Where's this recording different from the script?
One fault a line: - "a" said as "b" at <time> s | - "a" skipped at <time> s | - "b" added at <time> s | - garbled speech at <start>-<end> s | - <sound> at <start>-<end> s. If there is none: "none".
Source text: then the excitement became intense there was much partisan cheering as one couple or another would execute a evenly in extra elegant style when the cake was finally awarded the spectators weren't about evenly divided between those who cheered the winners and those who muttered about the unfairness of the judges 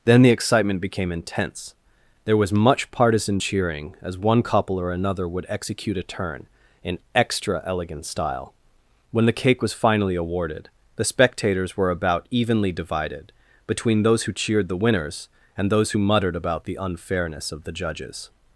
- "evenly" said as "turn" at 6.0 s
- "weren't" said as "were" at 11.8 s